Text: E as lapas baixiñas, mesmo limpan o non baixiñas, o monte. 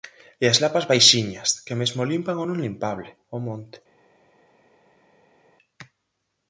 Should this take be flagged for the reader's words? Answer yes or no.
yes